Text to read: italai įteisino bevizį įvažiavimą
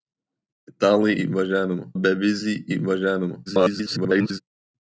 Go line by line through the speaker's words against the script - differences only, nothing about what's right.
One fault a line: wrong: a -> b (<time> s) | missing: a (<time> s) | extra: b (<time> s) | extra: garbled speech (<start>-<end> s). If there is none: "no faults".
wrong: įteisino -> įvažiavimą (1.3 s)
extra: garbled speech (3.5-4.4 s)